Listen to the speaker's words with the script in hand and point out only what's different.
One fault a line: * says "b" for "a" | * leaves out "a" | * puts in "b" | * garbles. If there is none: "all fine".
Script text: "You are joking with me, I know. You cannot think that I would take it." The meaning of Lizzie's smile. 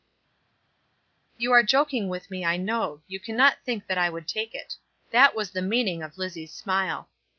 * puts in "That was"